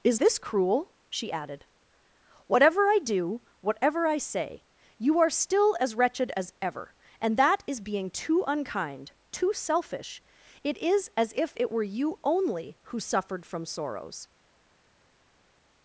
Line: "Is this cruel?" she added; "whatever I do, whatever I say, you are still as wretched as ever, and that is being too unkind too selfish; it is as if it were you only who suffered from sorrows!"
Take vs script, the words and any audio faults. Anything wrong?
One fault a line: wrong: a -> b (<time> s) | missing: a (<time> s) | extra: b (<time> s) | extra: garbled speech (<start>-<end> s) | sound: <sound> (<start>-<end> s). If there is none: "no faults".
no faults